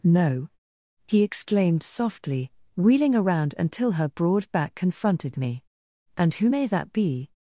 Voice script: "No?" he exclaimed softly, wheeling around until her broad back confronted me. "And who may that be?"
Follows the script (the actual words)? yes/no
yes